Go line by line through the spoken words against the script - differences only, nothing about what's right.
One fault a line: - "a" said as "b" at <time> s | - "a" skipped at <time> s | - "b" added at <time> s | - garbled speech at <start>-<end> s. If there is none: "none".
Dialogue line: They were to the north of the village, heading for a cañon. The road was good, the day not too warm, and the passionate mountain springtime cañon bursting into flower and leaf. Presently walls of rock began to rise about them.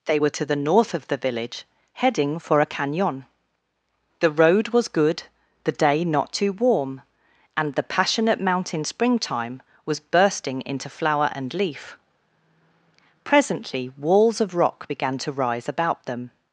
- "cañon" said as "was" at 9.8 s